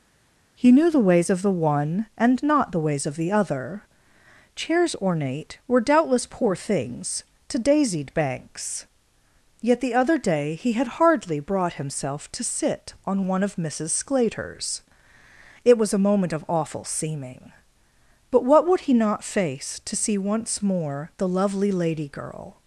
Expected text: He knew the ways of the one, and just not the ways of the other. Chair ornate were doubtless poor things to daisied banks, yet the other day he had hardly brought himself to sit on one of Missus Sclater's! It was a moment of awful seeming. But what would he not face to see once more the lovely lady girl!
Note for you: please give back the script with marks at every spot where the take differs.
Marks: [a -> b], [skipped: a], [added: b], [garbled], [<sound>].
He knew the ways of the one, and [skipped: just] not the ways of the other. [Chair -> Chairs] ornate were doubtless poor things to daisied banks, yet the other day he had hardly brought himself to sit on one of Missus Sclater's! It was a moment of awful seeming. But what would he not face to see once more the lovely lady girl!